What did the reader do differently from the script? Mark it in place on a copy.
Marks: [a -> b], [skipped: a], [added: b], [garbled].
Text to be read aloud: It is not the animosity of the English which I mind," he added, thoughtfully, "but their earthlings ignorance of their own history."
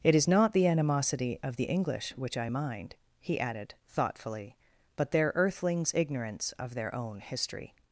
It is not the animosity of the English which I mind," he added, thoughtfully, "but their earthlings ignorance of their own history."